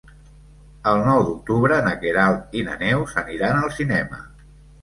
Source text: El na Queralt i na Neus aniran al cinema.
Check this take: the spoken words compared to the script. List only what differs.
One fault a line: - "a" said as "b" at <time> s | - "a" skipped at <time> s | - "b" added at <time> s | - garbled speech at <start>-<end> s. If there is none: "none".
- "nou d'octubre" added at 1.1 s